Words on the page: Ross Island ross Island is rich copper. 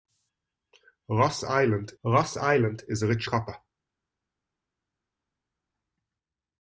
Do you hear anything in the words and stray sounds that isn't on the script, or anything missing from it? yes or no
no